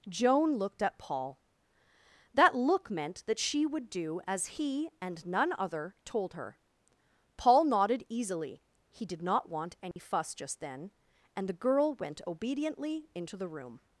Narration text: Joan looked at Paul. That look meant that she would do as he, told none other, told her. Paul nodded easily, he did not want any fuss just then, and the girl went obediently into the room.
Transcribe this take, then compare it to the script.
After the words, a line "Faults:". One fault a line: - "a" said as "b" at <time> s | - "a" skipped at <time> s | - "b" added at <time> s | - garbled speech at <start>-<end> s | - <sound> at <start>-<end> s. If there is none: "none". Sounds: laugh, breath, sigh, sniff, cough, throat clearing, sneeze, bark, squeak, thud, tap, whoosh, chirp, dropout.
Joan looked at Paul. That look meant that she would do as he, and none other, told her. Paul nodded easily, he did not want any fuss just then, and the girl went obediently into the room.
Faults:
- "told" said as "and" at 5.0 s
- dropout at 9.9-10.0 s